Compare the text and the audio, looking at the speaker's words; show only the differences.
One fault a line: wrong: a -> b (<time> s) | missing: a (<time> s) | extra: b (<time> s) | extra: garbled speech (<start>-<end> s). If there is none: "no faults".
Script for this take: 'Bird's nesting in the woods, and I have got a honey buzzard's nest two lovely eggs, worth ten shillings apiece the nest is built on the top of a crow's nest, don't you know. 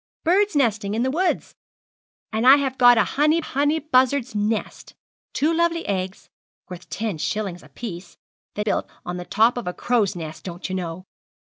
extra: honey (3.4 s)
missing: nest is (8.6 s)